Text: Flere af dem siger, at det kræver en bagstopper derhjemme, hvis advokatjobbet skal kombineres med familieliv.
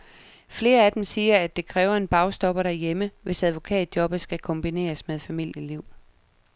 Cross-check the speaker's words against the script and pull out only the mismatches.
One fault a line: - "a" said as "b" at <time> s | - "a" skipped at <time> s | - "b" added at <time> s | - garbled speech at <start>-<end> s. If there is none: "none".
none